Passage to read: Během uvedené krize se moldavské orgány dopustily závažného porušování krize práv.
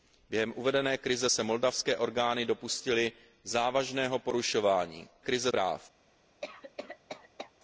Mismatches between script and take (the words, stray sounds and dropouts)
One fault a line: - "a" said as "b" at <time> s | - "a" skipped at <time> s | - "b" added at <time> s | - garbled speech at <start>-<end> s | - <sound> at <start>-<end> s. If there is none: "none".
- cough at 6.4-7.5 s